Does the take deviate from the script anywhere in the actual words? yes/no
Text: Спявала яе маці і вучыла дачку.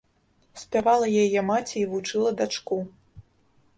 no